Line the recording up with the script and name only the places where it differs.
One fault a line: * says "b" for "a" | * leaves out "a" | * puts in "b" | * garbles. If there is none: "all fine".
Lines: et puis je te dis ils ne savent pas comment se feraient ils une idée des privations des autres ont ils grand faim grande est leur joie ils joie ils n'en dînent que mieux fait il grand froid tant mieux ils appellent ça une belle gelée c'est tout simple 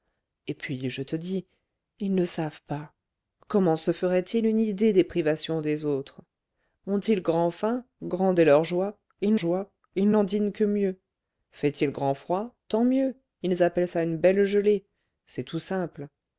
all fine